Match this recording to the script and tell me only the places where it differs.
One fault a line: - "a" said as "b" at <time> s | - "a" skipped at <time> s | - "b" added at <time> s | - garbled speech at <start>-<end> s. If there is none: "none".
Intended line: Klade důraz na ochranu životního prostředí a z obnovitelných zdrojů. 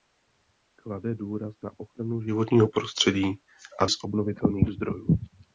none